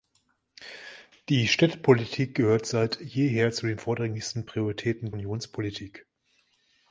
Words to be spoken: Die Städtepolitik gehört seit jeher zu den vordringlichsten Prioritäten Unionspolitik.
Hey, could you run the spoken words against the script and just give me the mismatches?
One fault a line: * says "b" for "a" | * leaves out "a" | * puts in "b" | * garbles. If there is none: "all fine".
all fine